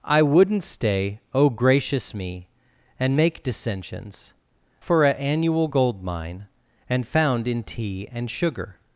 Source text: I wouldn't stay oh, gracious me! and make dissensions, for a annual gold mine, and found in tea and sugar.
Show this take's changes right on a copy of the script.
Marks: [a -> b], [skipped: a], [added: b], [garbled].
I wouldn't stay oh, gracious me! and make dissensions, for a annual gold mine, and found in tea and sugar.